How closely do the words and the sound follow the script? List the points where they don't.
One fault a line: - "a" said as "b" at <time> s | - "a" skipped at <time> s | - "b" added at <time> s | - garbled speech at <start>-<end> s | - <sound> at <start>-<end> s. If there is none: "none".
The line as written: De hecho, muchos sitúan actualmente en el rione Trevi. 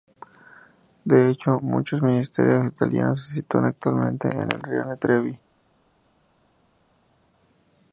- "ministerios italianos se" added at 2.0 s